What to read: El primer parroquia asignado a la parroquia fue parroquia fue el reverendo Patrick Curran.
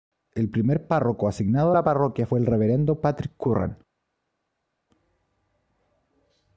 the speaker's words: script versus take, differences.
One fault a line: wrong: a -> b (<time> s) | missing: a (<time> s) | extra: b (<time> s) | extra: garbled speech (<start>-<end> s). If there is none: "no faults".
wrong: parroquia -> párroco (0.9 s)
missing: parroquia fue (2.4 s)